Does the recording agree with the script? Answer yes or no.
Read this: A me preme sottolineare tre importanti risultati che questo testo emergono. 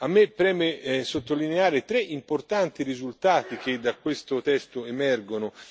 no